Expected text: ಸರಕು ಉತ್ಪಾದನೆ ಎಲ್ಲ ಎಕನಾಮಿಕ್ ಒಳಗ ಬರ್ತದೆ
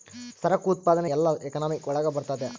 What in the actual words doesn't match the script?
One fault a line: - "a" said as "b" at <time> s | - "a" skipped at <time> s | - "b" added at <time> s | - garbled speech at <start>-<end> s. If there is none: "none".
none